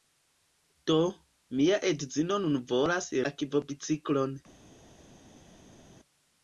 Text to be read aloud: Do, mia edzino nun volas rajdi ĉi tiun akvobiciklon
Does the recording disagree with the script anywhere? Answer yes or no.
yes